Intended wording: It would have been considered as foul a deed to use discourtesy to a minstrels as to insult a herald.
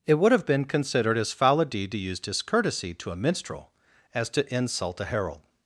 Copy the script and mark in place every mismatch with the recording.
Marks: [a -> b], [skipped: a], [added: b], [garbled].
It would have been considered as foul a deed to use discourtesy to a [minstrels -> minstrel] as to insult a herald.